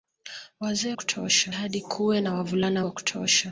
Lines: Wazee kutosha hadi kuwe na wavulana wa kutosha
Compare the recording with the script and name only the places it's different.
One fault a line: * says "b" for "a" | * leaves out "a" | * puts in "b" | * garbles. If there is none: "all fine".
all fine